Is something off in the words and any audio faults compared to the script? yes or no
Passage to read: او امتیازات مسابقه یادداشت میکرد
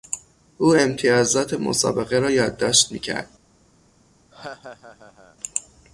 yes